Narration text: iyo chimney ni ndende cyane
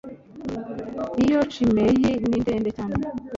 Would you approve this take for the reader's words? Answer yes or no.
yes